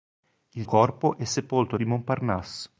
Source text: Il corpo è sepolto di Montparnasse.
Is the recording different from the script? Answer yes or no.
no